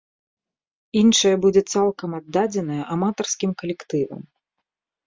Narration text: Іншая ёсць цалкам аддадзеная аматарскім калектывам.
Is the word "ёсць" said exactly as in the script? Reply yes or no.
no